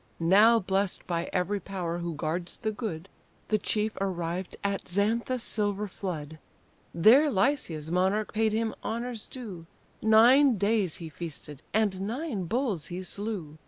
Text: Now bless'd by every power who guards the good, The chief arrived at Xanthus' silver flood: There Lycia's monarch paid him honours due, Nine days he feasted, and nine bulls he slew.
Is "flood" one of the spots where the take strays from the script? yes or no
no